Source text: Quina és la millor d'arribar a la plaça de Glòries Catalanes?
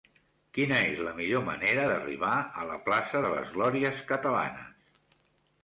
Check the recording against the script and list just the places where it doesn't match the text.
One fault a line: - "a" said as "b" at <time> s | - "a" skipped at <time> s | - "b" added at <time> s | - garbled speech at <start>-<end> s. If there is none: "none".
- "manera" added at 1.5 s
- "les" added at 3.4 s